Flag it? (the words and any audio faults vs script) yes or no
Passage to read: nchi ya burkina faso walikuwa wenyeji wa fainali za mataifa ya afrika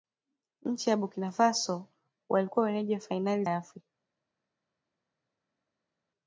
yes